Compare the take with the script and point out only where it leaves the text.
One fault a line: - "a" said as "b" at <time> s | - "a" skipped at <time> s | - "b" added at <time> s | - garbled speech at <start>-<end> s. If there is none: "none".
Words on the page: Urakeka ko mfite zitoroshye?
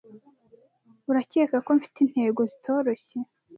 - "intego" added at 2.0 s